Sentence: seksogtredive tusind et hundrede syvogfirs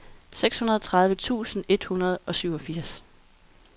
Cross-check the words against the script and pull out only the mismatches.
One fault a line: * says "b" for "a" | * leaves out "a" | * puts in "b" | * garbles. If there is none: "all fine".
* puts in "og"